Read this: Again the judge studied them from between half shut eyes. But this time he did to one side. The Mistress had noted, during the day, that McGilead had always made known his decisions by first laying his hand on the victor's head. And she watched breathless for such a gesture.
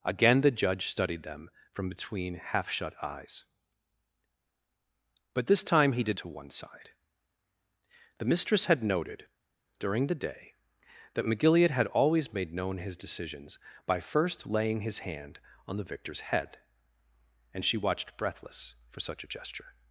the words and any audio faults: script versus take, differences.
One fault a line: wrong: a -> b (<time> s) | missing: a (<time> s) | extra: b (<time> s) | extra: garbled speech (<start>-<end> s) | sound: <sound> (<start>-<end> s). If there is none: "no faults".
no faults